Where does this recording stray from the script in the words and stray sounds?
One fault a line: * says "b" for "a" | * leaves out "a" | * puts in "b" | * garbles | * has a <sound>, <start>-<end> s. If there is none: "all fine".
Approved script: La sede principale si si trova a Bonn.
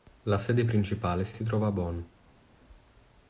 all fine